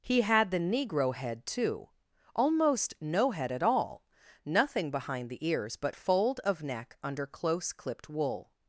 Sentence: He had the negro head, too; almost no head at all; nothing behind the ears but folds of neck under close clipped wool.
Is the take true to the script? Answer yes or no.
no